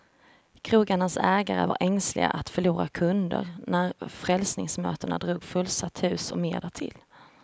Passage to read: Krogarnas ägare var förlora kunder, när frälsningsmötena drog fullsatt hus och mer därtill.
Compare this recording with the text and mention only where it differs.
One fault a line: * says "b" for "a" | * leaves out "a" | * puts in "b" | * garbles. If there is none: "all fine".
* puts in "ängsliga att"